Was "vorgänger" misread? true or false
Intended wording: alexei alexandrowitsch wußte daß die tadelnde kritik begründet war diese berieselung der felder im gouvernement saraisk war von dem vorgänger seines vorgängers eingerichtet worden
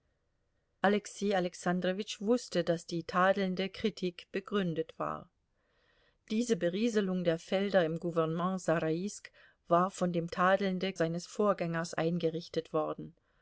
true